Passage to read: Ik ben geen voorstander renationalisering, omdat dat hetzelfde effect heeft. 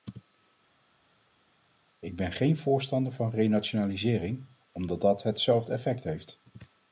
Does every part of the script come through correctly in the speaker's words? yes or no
no